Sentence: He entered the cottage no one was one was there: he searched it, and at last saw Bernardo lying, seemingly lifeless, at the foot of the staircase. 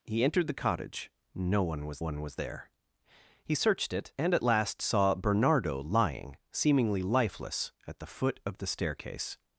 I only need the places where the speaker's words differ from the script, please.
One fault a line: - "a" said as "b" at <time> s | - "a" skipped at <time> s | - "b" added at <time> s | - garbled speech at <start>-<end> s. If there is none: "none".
none